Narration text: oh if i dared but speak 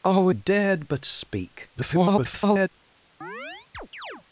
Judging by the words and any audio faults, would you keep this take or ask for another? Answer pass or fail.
fail